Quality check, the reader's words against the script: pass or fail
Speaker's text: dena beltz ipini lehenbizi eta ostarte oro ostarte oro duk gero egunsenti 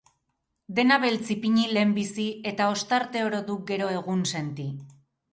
fail